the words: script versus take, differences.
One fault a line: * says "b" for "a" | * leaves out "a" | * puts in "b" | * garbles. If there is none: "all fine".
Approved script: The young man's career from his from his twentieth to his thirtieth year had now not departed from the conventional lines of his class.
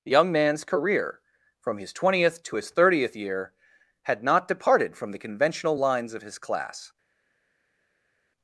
* leaves out "from his"
* leaves out "now"